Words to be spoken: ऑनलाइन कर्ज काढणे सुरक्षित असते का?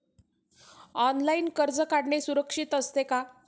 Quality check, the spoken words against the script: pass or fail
pass